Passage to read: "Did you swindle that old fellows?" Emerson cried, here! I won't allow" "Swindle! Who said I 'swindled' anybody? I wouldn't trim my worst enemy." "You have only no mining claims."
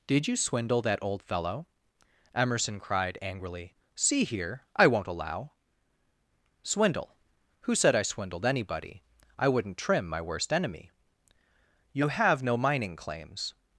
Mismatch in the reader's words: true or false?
true